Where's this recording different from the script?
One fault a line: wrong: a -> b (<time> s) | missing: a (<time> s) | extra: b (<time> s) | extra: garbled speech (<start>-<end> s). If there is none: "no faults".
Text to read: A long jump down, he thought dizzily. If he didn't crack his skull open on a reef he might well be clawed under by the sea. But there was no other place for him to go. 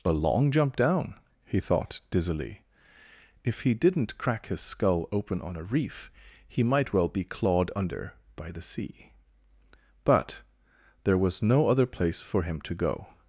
no faults